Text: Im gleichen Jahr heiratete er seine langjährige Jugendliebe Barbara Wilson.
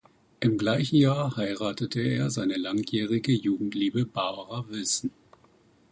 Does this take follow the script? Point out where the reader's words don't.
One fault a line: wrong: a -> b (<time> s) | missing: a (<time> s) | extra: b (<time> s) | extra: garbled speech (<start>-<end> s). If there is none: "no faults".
no faults